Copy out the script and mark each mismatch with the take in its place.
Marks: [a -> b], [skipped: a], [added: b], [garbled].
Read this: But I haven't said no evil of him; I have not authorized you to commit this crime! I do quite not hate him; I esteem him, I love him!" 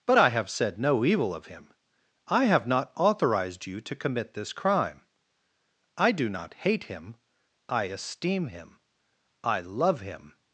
But I [haven't -> have] said no evil of him; I have not authorized you to commit this crime! I do [skipped: quite] not hate him; I esteem him, I love him!"